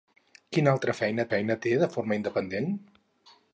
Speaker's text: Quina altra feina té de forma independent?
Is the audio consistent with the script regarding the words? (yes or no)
no